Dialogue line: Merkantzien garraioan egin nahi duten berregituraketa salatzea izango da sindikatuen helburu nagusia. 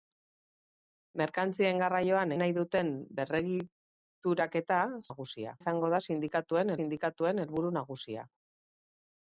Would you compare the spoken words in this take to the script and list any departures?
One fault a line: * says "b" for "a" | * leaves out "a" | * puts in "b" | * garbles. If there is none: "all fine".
* leaves out "egin"
* says "nagusia" for "salatzea"
* puts in "sindikatuen"